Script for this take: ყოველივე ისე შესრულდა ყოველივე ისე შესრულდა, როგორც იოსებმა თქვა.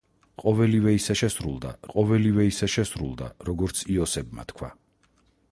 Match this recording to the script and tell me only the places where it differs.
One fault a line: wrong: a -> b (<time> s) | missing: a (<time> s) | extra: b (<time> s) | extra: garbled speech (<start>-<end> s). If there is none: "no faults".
no faults